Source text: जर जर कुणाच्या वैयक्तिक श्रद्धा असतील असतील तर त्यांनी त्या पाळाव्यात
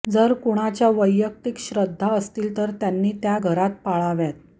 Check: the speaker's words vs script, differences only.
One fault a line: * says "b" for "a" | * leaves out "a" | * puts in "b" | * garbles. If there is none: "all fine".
* leaves out "जर"
* leaves out "असतील"
* puts in "घरात"